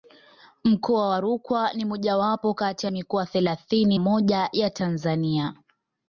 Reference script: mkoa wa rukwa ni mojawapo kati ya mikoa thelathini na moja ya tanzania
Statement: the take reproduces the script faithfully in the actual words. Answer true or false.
false